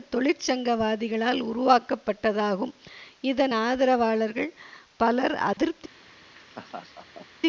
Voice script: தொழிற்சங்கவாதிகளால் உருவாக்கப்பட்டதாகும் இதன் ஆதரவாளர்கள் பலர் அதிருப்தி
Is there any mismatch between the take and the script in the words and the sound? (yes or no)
yes